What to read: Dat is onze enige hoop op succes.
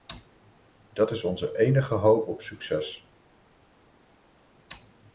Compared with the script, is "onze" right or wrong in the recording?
right